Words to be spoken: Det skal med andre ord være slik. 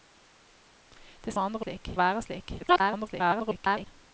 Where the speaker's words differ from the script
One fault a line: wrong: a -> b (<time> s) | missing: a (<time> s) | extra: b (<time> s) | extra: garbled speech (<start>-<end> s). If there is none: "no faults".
missing: skal (1.3 s)
wrong: ord -> slik (1.6 s)
extra: garbled speech (2.6-3.9 s)